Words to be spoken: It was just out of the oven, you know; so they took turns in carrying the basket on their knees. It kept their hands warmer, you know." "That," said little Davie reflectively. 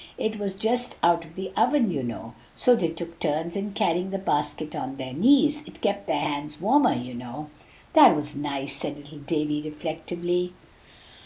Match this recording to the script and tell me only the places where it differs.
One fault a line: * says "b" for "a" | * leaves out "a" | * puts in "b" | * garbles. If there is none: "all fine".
* puts in "was nice"